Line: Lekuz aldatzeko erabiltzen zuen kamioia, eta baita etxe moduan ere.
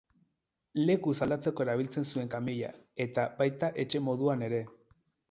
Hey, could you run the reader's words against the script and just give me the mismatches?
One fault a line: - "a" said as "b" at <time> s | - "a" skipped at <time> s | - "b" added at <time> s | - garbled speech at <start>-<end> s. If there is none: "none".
none